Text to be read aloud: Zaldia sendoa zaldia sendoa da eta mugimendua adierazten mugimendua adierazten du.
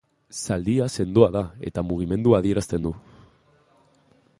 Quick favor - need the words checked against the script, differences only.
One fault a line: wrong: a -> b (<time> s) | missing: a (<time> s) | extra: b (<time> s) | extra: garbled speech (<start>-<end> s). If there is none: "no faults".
missing: zaldia sendoa (1.3 s)
missing: mugimendua adierazten (2.8 s)